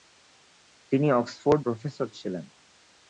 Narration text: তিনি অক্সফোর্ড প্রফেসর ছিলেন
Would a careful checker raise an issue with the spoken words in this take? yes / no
no